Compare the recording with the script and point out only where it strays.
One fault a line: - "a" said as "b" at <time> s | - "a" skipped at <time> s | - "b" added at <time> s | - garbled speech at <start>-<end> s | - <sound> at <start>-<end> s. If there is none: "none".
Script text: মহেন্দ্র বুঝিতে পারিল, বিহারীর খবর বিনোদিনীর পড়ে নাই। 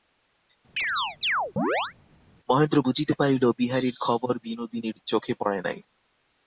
- chirp at 0.8-1.9 s
- "চোখে" added at 5.1 s